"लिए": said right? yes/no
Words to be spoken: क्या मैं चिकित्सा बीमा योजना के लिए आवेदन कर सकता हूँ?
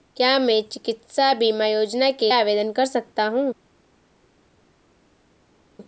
no